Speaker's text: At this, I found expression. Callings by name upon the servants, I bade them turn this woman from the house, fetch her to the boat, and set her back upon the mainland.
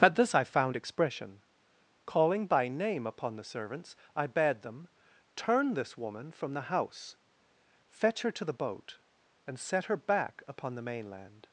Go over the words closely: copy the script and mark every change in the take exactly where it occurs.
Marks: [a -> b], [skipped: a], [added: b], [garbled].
At this, I found expression. [Callings -> Calling] by name upon the servants, I bade them turn this woman from the house, fetch her to the boat, and set her back upon the mainland.